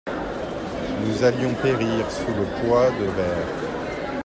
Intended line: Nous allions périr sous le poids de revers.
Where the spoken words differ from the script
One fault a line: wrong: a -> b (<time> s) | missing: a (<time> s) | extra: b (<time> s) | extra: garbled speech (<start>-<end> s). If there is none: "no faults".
no faults